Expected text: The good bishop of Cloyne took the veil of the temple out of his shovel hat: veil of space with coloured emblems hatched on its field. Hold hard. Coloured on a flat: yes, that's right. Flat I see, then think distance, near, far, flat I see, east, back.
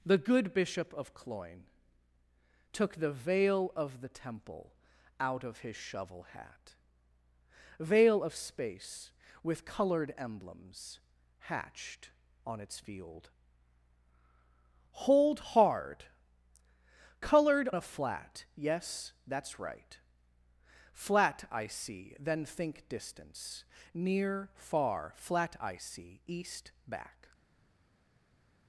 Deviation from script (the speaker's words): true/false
true